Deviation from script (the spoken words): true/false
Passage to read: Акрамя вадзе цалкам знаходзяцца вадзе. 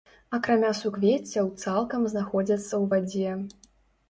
true